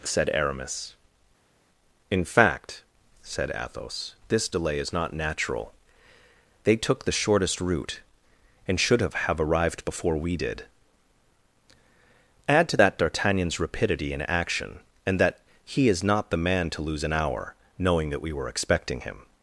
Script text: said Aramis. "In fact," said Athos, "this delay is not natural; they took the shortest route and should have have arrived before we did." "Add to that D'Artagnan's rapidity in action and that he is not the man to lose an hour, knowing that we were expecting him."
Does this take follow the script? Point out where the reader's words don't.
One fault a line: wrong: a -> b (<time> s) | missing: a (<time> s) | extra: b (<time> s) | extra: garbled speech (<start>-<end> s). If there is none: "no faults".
no faults